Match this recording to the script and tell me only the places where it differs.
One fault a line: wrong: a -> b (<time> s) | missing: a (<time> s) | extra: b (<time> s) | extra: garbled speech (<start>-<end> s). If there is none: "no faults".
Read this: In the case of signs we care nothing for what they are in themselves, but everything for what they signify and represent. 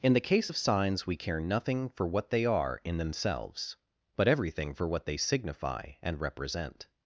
no faults